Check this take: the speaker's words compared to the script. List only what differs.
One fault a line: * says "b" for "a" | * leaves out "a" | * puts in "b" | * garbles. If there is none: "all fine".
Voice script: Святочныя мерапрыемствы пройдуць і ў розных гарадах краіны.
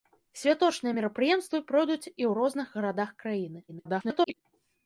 * garbles